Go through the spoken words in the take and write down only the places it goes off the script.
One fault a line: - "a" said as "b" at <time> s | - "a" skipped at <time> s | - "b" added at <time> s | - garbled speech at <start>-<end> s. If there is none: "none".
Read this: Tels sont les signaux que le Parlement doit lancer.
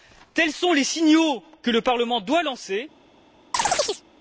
none